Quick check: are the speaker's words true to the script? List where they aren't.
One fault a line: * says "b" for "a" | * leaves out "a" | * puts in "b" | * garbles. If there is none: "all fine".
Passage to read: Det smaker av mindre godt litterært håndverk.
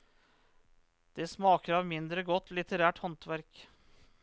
all fine